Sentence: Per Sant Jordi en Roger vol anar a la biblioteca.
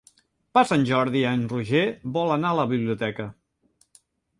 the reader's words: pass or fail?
pass